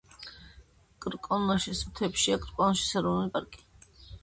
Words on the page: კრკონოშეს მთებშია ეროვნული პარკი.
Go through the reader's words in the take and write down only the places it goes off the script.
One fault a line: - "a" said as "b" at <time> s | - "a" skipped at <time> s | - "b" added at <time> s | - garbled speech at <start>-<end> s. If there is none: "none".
- "კრკონოშეს" added at 2.5 s